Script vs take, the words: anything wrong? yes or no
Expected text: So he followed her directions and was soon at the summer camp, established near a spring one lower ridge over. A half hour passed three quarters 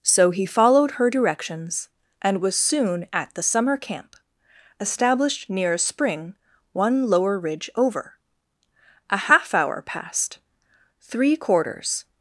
no